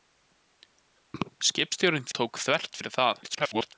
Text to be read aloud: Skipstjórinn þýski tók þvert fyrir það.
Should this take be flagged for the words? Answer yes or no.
yes